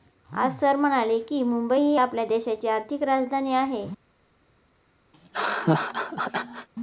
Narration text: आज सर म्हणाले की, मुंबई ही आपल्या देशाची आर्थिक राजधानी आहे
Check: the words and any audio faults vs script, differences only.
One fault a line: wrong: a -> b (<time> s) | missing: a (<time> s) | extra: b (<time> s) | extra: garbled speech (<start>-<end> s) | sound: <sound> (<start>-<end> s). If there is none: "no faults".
sound: laugh (5.1-6.7 s)